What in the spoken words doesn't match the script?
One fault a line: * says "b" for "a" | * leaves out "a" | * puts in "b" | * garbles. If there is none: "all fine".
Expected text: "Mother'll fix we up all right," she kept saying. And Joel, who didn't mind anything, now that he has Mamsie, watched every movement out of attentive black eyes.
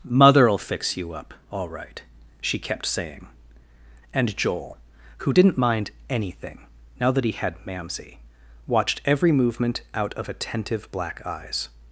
* says "you" for "we"
* says "had" for "has"